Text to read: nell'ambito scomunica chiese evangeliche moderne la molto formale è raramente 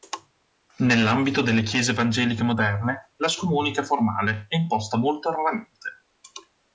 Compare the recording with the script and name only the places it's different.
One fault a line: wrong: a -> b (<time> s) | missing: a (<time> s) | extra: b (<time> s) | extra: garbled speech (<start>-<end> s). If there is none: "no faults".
wrong: scomunica -> delle (1.4 s)
wrong: molto -> scomunica (3.3 s)
extra: imposta molto (4.5 s)